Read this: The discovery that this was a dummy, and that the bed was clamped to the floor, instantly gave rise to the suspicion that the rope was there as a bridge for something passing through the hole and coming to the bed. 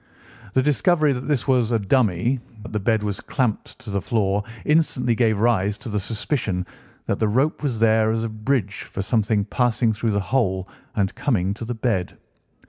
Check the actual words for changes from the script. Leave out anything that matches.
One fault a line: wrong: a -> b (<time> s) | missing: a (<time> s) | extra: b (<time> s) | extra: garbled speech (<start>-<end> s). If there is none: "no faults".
missing: and (2.4 s)